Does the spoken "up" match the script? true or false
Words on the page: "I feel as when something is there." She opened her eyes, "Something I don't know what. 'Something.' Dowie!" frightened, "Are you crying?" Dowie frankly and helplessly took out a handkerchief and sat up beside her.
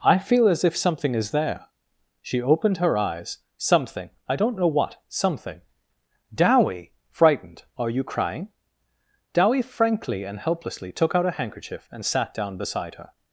false